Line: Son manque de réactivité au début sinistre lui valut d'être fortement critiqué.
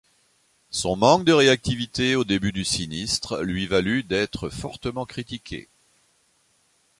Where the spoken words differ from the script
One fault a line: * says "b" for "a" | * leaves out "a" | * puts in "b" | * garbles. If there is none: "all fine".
* puts in "du"